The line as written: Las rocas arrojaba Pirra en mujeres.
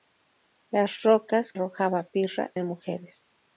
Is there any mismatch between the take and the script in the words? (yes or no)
no